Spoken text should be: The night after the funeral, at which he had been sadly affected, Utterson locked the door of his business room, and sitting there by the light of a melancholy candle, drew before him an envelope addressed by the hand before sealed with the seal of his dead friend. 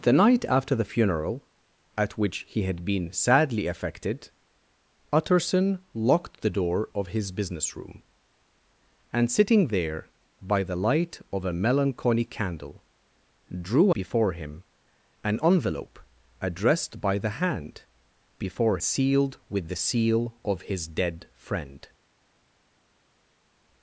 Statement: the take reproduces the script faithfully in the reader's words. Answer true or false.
true